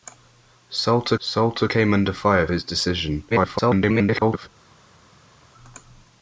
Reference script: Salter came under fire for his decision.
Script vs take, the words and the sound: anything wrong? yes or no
yes